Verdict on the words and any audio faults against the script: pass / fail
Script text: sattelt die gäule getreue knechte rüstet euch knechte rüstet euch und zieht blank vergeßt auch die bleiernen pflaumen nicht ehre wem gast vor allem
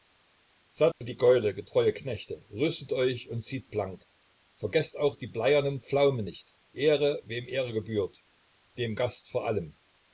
fail